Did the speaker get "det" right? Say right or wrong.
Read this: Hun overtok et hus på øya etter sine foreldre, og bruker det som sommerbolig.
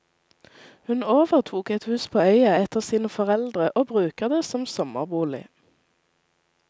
right